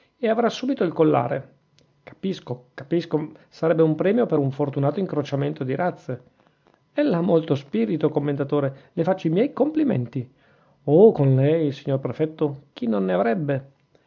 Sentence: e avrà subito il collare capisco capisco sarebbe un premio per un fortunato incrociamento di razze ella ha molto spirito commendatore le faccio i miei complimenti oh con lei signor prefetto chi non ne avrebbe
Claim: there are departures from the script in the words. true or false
false